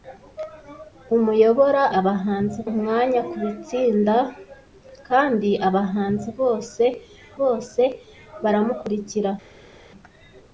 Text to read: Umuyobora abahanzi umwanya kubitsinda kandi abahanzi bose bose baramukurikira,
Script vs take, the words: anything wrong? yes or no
no